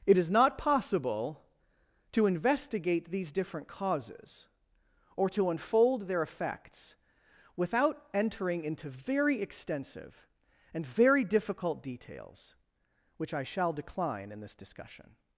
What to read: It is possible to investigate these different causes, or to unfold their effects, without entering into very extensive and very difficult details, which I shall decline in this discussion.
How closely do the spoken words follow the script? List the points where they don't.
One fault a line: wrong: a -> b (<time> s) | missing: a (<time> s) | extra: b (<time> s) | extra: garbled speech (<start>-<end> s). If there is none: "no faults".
extra: not (0.3 s)